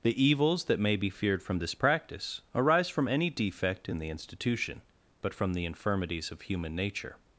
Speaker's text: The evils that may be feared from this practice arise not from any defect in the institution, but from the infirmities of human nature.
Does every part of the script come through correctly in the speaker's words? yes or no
no